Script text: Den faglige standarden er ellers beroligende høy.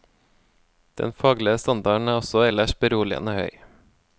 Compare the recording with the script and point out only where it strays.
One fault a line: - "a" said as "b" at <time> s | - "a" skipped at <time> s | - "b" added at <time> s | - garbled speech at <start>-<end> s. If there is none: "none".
- "også" added at 2.2 s